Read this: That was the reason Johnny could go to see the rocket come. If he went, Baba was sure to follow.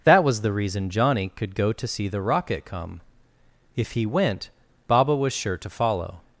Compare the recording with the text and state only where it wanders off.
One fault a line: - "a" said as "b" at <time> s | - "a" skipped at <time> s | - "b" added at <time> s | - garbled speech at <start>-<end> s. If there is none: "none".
none